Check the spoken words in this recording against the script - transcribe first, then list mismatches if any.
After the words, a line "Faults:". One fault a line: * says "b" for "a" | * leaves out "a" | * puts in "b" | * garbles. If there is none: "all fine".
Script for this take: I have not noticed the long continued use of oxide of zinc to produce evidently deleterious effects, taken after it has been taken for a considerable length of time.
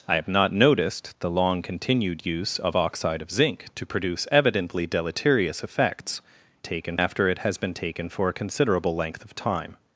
I have not noticed the long continued use of oxide of zinc to produce evidently deleterious effects, taken after it has been taken for a considerable length of time.
Faults:
all fine